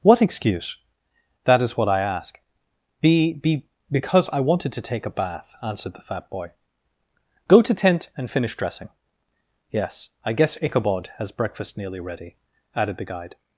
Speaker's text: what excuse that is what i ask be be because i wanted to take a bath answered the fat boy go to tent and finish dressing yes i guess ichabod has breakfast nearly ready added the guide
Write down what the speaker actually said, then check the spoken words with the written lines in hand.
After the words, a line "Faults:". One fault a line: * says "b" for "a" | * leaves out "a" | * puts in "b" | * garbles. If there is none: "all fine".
what excuse that is what i ask be be because i wanted to take a bath answered the fat boy go to tent and finish dressing yes i guess ichabod has breakfast nearly ready added the guide
Faults:
all fine